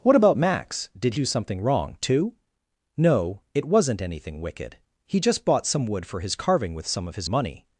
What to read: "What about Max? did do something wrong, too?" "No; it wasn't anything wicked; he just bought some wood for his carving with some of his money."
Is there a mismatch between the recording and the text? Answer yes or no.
no